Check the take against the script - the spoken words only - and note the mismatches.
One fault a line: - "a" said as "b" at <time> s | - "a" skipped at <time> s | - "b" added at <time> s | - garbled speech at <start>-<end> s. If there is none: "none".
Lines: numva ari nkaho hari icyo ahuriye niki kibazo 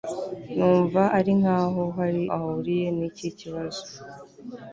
- "icyo" skipped at 2.2 s